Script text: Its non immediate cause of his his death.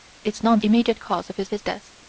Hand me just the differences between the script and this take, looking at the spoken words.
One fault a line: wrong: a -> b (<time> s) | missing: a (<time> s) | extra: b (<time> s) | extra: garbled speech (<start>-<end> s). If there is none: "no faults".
no faults